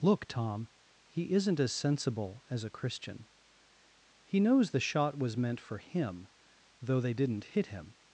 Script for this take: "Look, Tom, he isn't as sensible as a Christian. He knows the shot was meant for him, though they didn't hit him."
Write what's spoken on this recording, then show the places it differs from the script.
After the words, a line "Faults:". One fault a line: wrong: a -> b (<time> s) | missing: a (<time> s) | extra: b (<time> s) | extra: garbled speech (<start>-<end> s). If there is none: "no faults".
"Look, Tom, he isn't as sensible as a Christian. He knows the shot was meant for him, though they didn't hit him."
Faults:
no faults